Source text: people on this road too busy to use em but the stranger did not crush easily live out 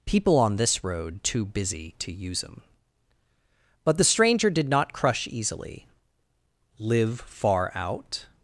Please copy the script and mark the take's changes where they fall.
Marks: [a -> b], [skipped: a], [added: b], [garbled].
people on this road too busy to use em but the stranger did not crush easily live [added: far] out